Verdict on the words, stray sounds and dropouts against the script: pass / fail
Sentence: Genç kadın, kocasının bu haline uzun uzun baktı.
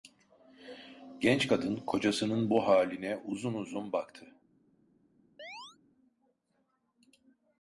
fail